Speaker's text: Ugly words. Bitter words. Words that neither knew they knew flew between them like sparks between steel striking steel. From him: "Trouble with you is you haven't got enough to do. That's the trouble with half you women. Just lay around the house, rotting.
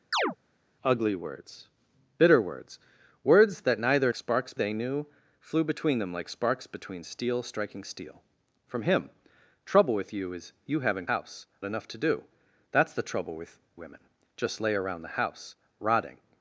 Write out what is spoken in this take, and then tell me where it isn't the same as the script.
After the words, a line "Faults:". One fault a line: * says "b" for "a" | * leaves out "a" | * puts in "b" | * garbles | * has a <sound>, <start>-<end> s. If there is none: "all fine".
Ugly words. Bitter words. Words that neither sparks they knew flew between them like sparks between steel striking steel. From him: "Trouble with you is you haven't house enough to do. That's the trouble with women. Just lay around the house, rotting.
Faults:
* has a chirp, 0.1-0.4 s
* says "sparks" for "knew"
* says "house" for "got"
* leaves out "half you"